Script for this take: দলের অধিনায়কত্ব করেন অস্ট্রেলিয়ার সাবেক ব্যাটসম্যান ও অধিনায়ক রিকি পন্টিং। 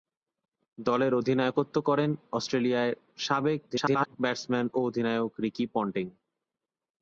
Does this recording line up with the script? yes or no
no